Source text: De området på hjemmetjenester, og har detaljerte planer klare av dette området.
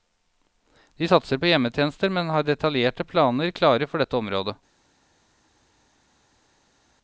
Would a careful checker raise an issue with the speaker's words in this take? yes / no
yes